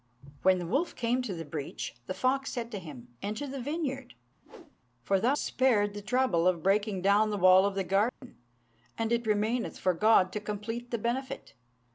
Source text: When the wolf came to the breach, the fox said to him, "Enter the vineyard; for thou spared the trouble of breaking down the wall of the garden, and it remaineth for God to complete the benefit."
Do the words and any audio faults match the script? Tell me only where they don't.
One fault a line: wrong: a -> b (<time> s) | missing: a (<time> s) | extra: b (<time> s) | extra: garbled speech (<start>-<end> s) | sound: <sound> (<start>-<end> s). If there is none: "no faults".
sound: whoosh (4.4-4.8 s)
sound: dropout (8.1-8.2 s)